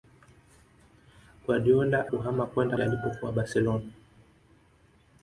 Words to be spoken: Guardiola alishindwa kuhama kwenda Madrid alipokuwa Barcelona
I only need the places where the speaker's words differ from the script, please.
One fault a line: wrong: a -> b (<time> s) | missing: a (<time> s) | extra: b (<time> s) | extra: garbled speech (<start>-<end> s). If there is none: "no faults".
missing: alishindwa (2.1 s)
missing: Madrid (2.8 s)